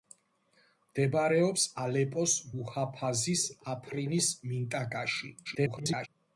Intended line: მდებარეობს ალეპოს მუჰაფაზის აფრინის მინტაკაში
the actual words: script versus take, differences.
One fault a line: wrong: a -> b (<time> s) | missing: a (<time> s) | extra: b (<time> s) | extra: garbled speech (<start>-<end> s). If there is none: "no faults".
extra: garbled speech (5.4-6.1 s)